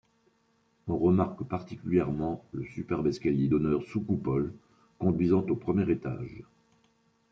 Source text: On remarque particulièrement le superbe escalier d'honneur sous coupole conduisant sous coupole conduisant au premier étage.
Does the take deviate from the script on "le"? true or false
false